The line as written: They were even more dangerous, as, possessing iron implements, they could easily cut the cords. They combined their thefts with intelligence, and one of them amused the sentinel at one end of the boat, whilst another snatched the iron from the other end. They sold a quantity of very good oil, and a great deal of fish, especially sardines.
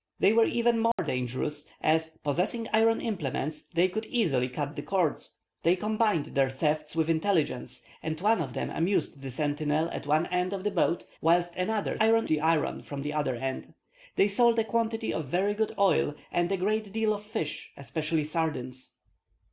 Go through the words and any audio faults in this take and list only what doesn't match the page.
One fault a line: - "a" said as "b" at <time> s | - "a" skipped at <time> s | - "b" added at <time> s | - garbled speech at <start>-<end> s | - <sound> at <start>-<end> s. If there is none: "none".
- dropout at 0.9-1.0 s
- "snatched" said as "iron" at 12.0 s